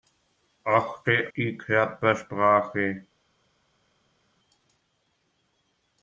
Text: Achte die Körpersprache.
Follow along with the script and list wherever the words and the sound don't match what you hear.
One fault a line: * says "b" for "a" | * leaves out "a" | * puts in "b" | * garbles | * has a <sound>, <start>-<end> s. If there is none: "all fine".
all fine